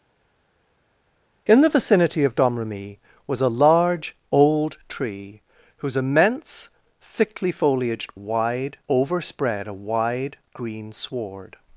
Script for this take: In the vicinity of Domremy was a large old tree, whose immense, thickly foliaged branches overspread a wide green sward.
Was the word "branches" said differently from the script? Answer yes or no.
yes